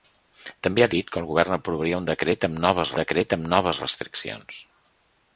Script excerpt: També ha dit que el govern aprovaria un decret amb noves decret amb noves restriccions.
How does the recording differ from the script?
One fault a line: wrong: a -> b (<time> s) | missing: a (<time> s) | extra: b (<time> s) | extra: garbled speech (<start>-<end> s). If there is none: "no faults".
no faults